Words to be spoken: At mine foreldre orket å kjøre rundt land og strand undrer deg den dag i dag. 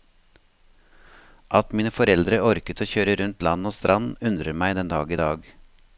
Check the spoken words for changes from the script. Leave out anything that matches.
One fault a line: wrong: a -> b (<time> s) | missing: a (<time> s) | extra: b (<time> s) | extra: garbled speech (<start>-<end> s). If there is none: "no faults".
wrong: deg -> meg (4.6 s)